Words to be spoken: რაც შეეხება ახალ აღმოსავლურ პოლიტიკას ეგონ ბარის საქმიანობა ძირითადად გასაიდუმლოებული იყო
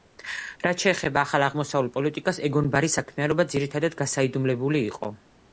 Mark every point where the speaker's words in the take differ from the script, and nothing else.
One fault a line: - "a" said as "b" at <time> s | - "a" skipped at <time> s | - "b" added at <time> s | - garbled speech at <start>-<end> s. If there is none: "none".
none